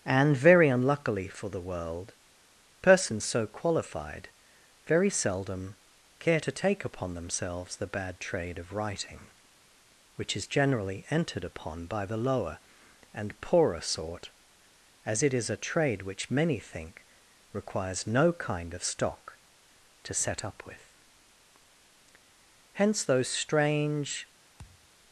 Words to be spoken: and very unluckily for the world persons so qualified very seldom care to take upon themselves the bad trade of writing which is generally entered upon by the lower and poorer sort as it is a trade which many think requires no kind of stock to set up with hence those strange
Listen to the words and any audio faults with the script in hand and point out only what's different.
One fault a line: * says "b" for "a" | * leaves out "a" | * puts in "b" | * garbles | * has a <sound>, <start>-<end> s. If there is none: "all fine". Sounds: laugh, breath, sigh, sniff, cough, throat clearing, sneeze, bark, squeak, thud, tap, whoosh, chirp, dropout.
* has a thud, 24.6-24.9 s